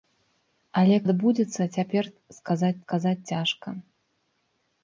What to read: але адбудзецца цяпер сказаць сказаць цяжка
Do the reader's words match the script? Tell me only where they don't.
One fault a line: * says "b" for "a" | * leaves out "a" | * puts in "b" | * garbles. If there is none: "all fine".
all fine